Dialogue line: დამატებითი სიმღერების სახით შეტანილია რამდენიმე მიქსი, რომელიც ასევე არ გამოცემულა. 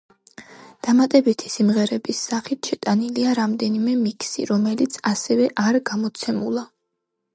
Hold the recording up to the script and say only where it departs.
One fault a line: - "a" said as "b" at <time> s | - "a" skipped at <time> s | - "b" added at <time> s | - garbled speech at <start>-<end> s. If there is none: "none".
none